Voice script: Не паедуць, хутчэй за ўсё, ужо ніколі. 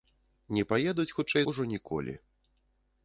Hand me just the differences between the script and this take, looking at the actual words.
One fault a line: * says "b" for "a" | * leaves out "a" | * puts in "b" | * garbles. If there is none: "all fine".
* leaves out "за ўсё"